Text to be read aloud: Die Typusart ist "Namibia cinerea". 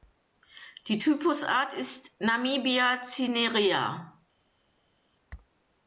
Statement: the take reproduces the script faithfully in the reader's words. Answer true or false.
true